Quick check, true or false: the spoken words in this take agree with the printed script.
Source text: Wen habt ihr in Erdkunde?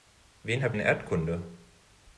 false